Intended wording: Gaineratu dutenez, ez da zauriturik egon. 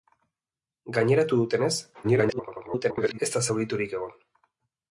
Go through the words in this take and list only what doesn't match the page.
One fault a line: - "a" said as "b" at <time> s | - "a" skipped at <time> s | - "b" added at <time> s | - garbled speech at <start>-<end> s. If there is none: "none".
- garbled speech at 2.0-3.2 s